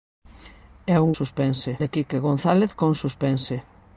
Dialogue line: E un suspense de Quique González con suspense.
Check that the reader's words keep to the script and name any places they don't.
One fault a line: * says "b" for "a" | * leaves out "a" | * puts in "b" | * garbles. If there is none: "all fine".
all fine